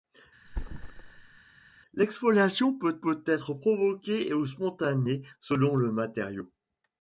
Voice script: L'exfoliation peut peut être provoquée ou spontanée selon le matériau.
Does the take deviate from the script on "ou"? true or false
false